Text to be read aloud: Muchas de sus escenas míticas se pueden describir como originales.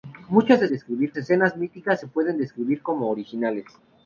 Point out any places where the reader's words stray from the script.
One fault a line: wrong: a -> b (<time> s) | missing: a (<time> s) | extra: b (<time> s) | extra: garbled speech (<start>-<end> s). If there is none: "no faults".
wrong: sus -> describir (0.7 s)